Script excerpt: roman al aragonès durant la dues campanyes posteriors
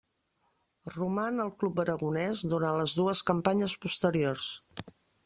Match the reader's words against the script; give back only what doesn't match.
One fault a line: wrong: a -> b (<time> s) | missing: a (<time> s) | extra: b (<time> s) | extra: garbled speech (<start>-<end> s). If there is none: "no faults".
extra: club (1.6 s)
wrong: la -> les (2.8 s)